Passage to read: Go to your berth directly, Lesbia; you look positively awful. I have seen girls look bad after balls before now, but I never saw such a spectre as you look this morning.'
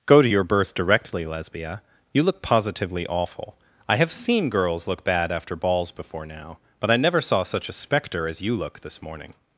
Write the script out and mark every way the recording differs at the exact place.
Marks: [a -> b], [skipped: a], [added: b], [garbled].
Go to your berth directly, Lesbia; you look positively awful. I have seen girls look bad after balls before now, but I never saw such a spectre as you look this morning.'